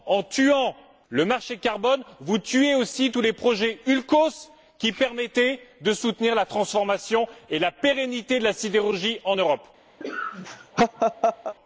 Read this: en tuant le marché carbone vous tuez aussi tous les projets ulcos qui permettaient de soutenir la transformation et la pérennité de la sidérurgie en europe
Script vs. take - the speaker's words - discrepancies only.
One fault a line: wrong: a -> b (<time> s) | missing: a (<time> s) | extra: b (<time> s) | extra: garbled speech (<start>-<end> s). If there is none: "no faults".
no faults